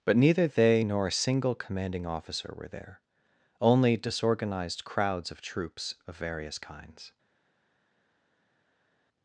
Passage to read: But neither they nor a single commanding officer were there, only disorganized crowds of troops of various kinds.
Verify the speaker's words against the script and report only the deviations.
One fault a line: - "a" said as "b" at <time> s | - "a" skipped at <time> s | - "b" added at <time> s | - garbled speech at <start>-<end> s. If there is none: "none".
none